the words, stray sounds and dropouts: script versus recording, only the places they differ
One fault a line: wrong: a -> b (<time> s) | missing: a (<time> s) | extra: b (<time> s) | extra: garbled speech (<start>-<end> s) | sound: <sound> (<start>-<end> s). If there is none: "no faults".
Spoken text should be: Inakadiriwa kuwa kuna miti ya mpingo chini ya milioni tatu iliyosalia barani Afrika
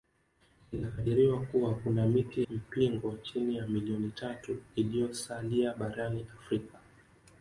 missing: ya (2.5 s)